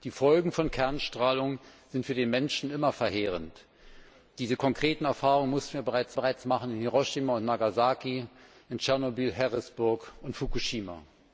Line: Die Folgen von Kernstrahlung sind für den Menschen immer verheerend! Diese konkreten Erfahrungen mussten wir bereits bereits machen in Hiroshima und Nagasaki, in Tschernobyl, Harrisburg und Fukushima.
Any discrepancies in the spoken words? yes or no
no